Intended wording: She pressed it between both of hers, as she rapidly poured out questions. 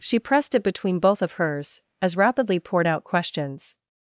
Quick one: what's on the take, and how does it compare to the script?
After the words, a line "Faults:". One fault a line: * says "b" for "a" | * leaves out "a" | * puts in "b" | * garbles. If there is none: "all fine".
She pressed it between both of hers, as rapidly poured out questions.
Faults:
* leaves out "she"